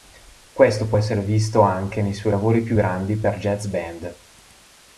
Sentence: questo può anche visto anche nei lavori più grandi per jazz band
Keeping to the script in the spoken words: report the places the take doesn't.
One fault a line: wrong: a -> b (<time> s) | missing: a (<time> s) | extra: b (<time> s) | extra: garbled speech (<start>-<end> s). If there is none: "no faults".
wrong: anche -> essere (0.9 s)
extra: suoi (2.1 s)